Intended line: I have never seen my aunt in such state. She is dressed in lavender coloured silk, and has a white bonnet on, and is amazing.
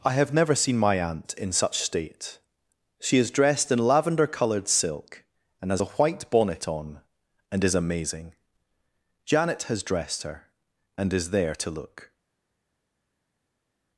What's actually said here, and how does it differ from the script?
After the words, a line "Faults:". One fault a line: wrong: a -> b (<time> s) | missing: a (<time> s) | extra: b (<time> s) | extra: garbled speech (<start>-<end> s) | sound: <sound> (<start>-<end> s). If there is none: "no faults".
I have never seen my aunt in such state. She is dressed in lavender coloured silk, and has a white bonnet on, and is amazing. Janet has dressed her, and is there to look
Faults:
extra: Janet has dressed her and is there to look (9.2 s)